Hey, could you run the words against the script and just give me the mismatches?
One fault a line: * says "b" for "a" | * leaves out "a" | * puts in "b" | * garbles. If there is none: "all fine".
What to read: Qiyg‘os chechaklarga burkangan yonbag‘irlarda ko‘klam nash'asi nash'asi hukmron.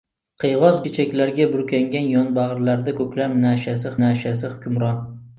all fine